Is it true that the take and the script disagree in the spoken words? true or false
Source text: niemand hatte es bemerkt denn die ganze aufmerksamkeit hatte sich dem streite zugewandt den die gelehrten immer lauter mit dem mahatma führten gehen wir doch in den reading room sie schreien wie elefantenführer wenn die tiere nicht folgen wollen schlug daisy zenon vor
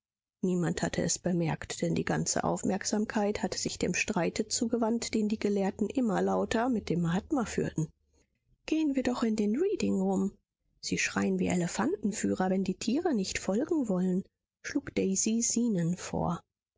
false